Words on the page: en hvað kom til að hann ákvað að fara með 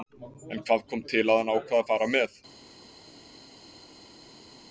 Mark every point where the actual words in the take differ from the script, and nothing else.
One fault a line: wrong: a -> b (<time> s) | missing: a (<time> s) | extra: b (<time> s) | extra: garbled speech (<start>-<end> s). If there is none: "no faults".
no faults